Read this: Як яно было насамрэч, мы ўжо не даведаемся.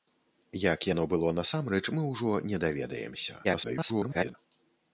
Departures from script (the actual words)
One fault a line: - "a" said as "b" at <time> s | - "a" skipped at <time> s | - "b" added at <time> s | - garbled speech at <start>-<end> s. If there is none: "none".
- garbled speech at 3.4-4.3 s